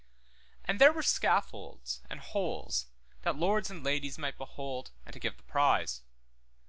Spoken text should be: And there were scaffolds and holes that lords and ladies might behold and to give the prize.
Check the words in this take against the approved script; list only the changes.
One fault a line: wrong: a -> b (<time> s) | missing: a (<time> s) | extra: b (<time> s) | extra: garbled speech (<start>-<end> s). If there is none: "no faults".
no faults